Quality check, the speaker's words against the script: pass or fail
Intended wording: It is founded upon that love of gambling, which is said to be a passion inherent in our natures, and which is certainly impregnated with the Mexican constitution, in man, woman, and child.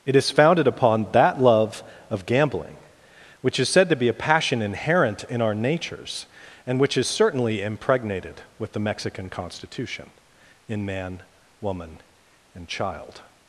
pass